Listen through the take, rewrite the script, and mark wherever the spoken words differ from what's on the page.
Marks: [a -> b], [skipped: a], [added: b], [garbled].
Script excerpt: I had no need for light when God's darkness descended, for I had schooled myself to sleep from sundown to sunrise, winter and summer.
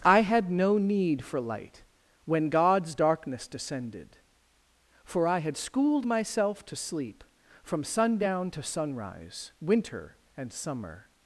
I had no need for light when God's darkness descended, for I had schooled myself to sleep from sundown to sunrise, winter and summer.